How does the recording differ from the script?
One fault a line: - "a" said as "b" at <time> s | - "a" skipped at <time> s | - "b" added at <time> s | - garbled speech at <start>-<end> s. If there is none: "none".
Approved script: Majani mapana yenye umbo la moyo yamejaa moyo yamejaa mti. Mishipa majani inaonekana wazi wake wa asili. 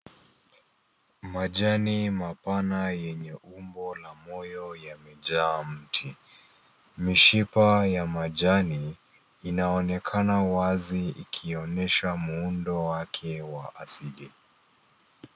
- "moyo yamejaa" skipped at 5.6 s
- "ya" added at 7.9 s
- "ikionyesha muundo" added at 11.1 s